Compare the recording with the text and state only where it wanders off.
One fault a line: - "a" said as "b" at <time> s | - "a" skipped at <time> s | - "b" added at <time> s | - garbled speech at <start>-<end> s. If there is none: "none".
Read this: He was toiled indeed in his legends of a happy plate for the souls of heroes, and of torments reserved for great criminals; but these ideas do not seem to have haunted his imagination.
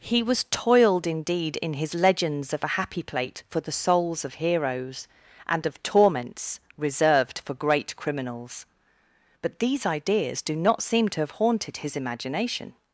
none